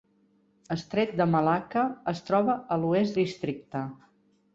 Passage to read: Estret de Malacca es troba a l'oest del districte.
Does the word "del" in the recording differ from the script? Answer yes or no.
yes